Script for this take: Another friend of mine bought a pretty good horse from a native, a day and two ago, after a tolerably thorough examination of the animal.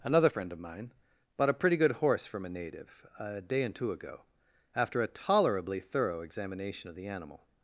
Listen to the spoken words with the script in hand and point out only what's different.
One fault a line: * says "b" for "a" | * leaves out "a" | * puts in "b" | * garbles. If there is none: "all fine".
all fine